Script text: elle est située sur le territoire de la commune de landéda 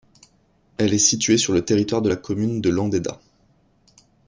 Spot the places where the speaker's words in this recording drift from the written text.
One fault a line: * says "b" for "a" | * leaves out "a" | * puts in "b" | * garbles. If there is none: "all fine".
all fine